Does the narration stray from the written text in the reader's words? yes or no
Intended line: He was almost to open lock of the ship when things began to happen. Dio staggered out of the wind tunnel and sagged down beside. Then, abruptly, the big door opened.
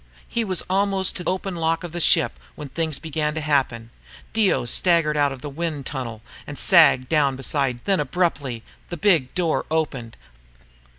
no